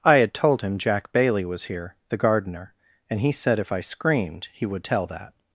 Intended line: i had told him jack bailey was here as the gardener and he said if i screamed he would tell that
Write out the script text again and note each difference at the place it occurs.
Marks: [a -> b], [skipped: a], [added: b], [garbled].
i had told him jack bailey was here [skipped: as] the gardener and he said if i screamed he would tell that